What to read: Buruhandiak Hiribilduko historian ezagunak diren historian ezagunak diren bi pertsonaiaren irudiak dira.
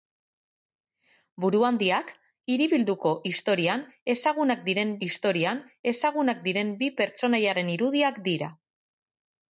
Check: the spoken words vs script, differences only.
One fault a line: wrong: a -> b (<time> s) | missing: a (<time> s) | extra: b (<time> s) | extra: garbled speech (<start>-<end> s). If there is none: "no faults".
no faults